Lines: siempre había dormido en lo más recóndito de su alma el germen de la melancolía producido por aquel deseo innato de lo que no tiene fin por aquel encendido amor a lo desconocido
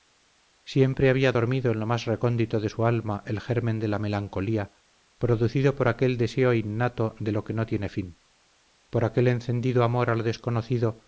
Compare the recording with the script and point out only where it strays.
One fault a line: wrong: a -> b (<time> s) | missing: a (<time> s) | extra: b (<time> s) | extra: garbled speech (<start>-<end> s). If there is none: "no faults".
no faults